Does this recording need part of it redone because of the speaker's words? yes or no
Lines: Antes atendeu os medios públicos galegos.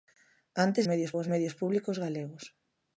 yes